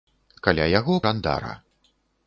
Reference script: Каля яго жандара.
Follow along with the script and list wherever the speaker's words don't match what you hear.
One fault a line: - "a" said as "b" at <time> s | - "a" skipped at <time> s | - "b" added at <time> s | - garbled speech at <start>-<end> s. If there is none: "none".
none